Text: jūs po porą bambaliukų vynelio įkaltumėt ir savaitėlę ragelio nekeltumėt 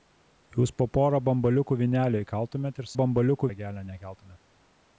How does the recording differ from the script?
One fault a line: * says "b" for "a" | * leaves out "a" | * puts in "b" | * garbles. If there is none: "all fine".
* says "bambaliukų" for "savaitėlę"